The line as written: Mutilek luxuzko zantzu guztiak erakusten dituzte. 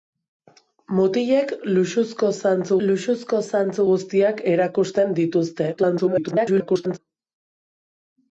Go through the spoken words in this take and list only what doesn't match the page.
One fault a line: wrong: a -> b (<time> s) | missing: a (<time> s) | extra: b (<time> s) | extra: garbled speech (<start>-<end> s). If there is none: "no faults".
extra: luxuzko zantzu (2.9 s)
extra: garbled speech (5.8-7.0 s)